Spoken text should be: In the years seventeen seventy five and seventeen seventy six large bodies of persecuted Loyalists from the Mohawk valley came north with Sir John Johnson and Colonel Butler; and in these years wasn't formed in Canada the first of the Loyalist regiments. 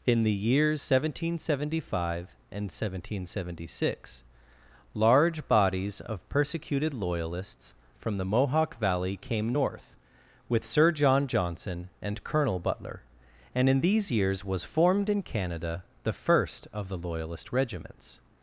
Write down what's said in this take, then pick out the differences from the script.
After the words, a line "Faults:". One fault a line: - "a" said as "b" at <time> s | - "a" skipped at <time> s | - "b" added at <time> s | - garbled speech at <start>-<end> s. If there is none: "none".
In the years seventeen seventy five and seventeen seventy six large bodies of persecuted Loyalists from the Mohawk valley came north with Sir John Johnson and Colonel Butler; and in these years was formed in Canada the first of the Loyalist regiments.
Faults:
- "wasn't" said as "was" at 14.4 s